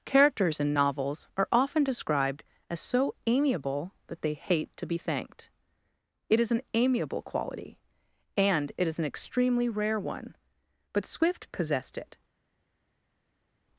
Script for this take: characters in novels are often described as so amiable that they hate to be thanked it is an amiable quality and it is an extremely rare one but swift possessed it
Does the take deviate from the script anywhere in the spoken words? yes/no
no